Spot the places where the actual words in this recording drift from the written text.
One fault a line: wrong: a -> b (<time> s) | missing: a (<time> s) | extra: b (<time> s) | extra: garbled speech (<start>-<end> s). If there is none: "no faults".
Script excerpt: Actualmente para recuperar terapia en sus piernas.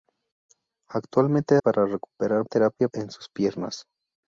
no faults